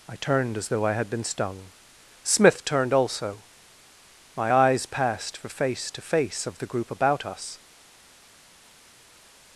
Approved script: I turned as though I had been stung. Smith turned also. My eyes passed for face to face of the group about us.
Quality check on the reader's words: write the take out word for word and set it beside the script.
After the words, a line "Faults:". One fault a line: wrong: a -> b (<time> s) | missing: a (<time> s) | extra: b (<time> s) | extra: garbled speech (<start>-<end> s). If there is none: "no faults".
I turned as though I had been stung. Smith turned also. My eyes passed for face to face of the group about us.
Faults:
no faults